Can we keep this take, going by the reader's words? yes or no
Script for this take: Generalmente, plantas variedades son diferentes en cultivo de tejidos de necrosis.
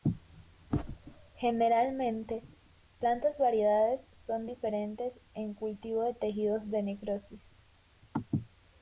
yes